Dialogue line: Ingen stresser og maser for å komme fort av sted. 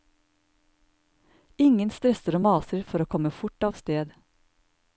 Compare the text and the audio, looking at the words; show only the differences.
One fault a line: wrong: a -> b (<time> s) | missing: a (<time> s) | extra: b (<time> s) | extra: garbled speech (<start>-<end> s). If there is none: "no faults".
no faults